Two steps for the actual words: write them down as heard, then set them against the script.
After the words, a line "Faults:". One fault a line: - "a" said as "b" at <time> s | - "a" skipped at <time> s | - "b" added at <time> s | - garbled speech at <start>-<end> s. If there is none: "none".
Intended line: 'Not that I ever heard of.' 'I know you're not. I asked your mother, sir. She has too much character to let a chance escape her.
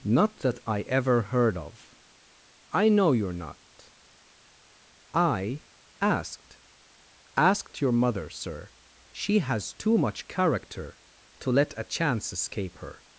'Not that I ever heard of.' 'I know you're not. I asked asked your mother, sir. She has too much character to let a chance escape her.
Faults:
- "asked" added at 7.4 s